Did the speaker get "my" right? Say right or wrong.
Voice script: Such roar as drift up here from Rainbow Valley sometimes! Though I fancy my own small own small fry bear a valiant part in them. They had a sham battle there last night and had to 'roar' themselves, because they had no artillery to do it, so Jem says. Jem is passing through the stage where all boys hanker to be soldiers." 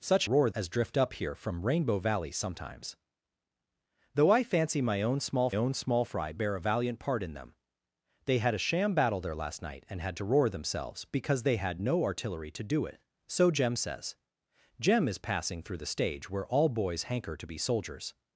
right